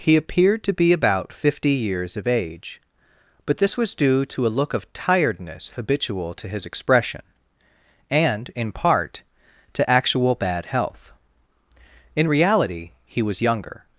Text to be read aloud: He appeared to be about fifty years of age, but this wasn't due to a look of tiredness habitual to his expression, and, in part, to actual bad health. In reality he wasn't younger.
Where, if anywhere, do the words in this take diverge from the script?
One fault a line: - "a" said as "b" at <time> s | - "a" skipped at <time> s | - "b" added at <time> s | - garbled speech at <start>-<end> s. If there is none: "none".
- "wasn't" said as "was" at 3.8 s
- "wasn't" said as "was" at 13.2 s